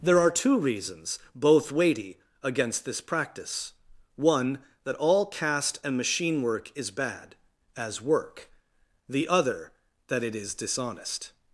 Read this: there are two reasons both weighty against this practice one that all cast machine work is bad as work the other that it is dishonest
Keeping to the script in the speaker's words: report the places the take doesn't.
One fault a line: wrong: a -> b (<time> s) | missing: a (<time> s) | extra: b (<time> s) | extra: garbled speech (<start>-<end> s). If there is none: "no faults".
extra: and (5.8 s)